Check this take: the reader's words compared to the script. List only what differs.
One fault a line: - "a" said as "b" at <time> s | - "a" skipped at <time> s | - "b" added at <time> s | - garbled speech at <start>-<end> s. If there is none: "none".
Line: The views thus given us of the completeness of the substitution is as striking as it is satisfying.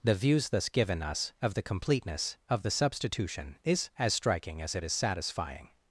none